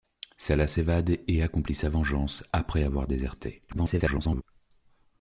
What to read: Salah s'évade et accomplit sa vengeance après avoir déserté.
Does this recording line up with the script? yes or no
no